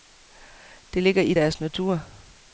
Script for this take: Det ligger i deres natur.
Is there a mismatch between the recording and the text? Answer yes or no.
no